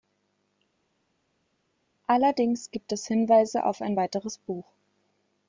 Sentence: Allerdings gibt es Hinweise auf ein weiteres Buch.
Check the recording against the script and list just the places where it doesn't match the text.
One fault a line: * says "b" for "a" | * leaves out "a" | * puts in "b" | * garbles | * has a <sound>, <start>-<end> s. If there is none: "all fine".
all fine